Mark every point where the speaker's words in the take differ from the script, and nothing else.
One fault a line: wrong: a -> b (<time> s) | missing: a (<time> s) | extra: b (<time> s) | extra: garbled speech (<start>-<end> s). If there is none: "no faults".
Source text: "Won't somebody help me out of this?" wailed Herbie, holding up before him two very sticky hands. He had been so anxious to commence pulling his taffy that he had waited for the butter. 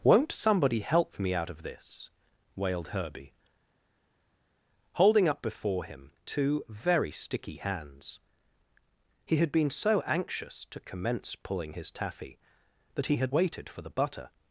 no faults